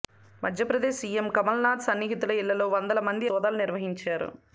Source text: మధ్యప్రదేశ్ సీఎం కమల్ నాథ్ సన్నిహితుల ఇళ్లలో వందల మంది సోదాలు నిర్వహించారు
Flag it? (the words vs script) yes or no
no